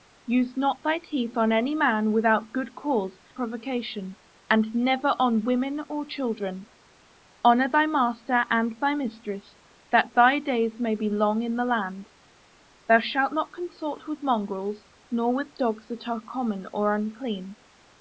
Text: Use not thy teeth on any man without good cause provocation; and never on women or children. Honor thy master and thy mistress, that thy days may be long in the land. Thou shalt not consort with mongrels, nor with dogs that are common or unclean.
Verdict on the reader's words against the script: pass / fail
pass